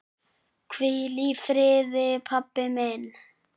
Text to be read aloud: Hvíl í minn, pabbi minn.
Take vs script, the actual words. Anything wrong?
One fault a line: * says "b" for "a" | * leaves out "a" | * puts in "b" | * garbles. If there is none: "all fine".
* says "friði" for "minn"